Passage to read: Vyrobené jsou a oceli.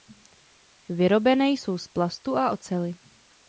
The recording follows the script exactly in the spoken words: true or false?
false